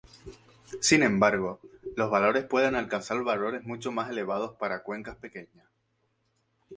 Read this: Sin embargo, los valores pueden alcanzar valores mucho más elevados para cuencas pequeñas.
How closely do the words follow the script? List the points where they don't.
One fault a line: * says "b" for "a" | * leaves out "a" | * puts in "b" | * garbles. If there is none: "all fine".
all fine